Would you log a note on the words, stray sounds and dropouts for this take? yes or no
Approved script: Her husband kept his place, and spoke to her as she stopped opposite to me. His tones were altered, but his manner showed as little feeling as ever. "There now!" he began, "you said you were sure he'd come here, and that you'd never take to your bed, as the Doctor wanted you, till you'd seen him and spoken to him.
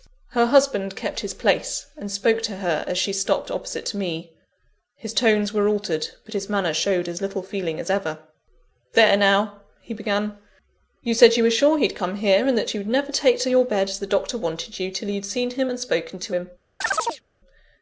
yes